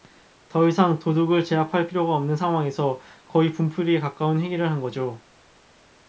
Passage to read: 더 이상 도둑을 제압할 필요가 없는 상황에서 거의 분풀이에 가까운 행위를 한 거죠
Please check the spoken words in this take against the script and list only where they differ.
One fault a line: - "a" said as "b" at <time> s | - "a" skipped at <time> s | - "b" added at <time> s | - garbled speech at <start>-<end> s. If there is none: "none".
none